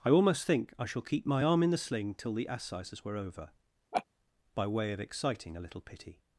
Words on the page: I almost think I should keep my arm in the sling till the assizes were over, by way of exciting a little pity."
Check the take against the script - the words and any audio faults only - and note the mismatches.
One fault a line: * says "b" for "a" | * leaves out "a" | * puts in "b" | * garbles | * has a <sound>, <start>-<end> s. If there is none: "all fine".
* says "shall" for "should"
* has a laugh, 3.9-4.0 s